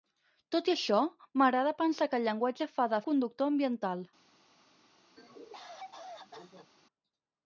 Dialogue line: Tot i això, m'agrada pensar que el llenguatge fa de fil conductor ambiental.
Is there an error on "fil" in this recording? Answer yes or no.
yes